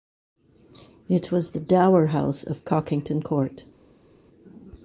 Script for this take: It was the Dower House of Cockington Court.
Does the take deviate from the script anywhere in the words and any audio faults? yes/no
no